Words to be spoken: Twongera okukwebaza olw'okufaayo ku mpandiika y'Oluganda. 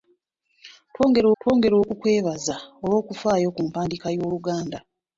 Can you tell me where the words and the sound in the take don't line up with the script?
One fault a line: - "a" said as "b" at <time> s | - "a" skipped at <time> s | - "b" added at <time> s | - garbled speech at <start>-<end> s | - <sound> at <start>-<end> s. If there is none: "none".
- "twongera" added at 1.4 s